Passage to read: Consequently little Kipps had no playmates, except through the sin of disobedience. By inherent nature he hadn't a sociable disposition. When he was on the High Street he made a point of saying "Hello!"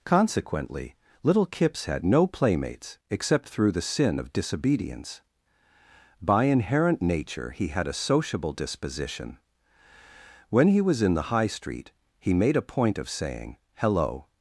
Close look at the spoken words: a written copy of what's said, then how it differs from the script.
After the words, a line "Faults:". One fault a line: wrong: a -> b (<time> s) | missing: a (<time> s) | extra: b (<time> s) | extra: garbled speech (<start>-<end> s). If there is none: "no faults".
Consequently little Kipps had no playmates, except through the sin of disobedience. By inherent nature he had a sociable disposition. When he was in the High Street he made a point of saying "Hello!"
Faults:
wrong: hadn't -> had (7.7 s)
wrong: on -> in (11.0 s)